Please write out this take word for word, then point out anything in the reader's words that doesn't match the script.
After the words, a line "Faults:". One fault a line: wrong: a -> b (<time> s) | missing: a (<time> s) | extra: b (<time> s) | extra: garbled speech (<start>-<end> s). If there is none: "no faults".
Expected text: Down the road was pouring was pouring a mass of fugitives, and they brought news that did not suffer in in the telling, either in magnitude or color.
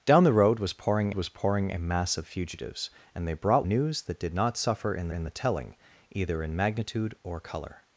Down the road was pouring was pouring a mass of fugitives, and they brought news that did not suffer in in the telling, either in magnitude or color.
Faults:
no faults